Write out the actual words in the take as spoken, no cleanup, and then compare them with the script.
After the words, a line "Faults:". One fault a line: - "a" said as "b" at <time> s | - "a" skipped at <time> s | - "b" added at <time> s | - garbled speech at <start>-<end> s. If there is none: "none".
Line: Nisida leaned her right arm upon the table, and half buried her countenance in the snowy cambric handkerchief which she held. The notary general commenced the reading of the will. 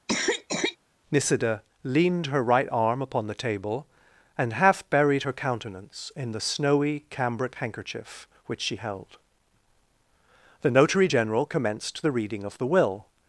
Nisida leaned her right arm upon the table, and half buried her countenance in the snowy cambric handkerchief which she held. The notary general commenced the reading of the will.
Faults:
none